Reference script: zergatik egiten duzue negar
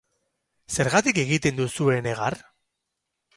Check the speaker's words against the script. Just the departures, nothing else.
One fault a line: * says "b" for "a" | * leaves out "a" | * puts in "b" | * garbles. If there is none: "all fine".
all fine